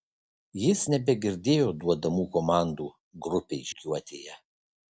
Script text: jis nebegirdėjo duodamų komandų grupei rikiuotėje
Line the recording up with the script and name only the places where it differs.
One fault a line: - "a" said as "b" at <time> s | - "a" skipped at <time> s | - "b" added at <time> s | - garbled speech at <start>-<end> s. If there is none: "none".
none